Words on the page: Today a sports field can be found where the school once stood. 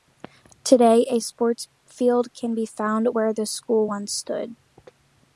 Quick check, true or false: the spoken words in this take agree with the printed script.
true